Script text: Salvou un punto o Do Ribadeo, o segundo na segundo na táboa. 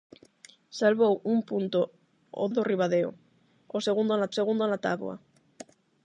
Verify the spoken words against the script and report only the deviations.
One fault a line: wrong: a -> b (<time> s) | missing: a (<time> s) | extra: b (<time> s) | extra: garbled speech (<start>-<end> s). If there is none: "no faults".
no faults